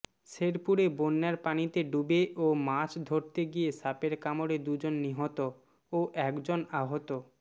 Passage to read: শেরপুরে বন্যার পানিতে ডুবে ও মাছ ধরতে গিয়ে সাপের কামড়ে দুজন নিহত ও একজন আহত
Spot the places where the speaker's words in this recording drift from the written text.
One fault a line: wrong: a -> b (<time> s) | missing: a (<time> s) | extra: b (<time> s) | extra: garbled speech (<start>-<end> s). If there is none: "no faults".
no faults